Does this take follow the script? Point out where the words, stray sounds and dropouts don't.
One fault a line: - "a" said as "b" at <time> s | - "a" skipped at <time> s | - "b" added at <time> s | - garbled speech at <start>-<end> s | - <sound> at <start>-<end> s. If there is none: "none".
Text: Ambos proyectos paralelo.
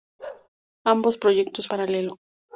- bark at 0.2-0.5 s